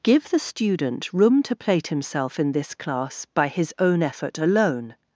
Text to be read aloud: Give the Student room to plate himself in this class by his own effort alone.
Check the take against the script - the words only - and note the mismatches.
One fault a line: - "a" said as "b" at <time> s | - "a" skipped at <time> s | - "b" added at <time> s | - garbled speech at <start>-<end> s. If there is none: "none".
none